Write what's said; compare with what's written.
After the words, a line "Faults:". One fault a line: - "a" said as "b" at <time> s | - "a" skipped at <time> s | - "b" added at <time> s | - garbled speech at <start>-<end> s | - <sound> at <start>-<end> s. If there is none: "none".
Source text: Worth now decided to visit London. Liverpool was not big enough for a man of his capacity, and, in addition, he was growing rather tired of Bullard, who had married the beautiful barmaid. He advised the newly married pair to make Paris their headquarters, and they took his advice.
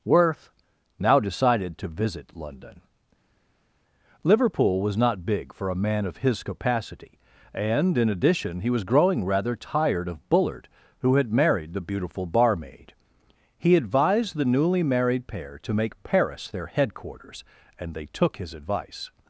Worth now decided to visit London. Liverpool was not big for a man of his capacity, and, in addition, he was growing rather tired of Bullard, who had married the beautiful barmaid. He advised the newly married pair to make Paris their headquarters, and they took his advice.
Faults:
- "enough" skipped at 5.5 s